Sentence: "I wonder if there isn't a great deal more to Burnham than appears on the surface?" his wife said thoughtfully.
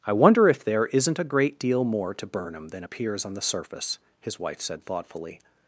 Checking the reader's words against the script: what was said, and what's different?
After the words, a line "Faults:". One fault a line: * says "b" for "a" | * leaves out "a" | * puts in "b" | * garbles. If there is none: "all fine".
"I wonder if there isn't a great deal more to Burnham than appears on the surface?" his wife said thoughtfully.
Faults:
all fine